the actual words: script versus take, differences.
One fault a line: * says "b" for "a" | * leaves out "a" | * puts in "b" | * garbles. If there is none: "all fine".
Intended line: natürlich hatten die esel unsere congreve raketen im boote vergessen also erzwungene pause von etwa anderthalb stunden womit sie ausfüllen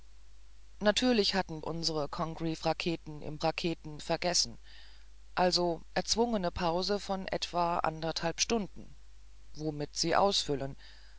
* leaves out "die esel"
* says "raketen" for "boote"